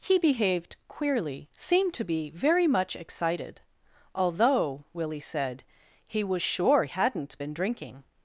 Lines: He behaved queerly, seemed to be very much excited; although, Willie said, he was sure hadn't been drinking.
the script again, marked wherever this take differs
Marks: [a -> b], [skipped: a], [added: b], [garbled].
He behaved queerly, seemed to be very much excited; although, Willie said, he was sure hadn't been drinking.